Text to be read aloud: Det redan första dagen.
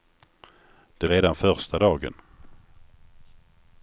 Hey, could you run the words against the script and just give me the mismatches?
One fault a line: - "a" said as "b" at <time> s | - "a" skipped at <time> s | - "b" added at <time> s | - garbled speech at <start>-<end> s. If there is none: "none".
none